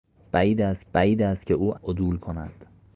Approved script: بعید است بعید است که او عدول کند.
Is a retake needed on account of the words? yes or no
no